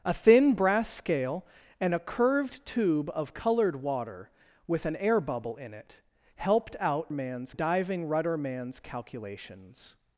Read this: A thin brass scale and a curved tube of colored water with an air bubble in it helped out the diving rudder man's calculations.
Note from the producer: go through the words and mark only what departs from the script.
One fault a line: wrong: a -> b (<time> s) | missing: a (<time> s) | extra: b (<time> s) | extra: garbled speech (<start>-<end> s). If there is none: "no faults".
wrong: the -> man's (7.1 s)